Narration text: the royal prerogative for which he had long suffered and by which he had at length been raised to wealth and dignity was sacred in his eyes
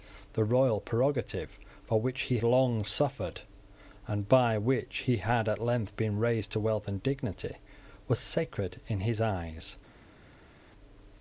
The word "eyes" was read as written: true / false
true